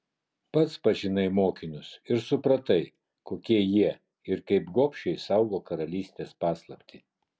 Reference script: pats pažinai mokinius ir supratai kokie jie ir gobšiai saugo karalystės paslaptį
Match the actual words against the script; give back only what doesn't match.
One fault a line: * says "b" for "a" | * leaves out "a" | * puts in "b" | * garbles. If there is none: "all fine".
* puts in "kaip"